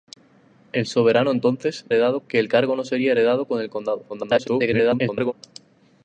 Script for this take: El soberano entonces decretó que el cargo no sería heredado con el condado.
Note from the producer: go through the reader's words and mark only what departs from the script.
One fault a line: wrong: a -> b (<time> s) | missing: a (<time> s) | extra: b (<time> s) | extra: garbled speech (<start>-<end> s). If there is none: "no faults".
wrong: decretó -> heredado (1.9 s)
extra: garbled speech (4.1-5.3 s)